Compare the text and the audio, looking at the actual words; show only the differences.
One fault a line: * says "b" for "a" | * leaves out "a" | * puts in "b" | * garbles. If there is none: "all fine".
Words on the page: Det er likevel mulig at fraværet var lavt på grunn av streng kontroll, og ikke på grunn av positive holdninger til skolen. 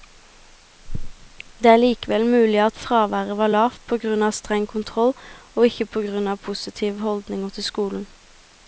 all fine